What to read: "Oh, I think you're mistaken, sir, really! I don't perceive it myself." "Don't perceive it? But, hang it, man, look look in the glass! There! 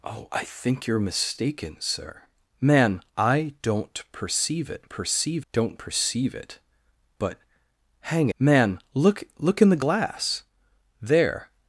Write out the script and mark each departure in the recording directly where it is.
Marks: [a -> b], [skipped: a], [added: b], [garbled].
"Oh, I think you're mistaken, sir, [really! -> man] I don't perceive it [myself." -> perceive] "Don't perceive it? But, hang [skipped: it,] man, look look in the glass! There!